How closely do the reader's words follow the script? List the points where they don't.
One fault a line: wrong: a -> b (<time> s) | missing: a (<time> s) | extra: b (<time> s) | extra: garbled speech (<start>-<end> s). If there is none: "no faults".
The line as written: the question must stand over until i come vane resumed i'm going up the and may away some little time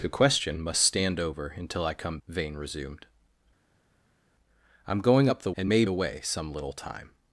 no faults